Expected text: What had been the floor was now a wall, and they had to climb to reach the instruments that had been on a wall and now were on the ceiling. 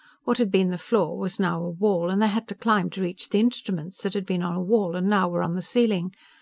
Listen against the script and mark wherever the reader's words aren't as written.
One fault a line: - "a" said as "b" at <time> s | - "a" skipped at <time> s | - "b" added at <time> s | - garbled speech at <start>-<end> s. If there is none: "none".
none